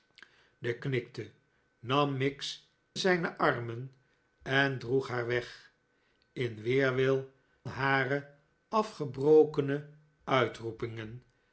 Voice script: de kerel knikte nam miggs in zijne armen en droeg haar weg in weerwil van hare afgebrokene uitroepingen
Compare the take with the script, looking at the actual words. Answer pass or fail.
fail